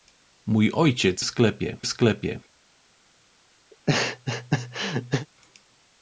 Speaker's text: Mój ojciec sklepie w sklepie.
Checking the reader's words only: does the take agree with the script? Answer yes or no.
yes